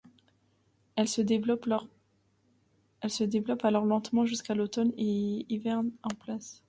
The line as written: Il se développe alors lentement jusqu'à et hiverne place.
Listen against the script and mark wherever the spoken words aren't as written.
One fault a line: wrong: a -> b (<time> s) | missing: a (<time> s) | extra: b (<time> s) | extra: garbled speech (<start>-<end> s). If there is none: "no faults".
wrong: Il -> Elle (0.9 s)
extra: l'automne (4.5 s)
extra: en (6.0 s)